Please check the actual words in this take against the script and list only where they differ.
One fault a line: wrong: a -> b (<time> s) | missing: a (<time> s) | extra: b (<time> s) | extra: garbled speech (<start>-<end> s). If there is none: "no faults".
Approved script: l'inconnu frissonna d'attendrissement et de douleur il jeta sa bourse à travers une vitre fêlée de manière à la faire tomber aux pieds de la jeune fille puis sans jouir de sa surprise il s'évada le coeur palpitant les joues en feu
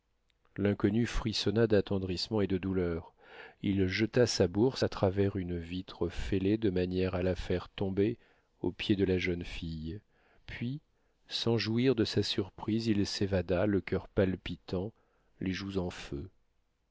no faults